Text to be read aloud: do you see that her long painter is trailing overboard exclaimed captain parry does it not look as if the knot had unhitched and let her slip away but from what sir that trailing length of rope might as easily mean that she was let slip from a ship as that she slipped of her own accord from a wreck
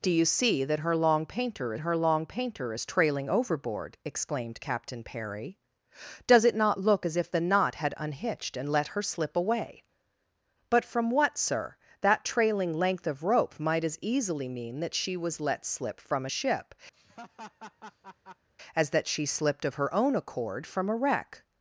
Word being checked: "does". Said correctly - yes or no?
yes